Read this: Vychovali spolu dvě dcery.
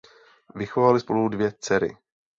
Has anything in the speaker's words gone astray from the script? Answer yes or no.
no